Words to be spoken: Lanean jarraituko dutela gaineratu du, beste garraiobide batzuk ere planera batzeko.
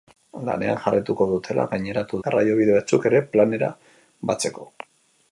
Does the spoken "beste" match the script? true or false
false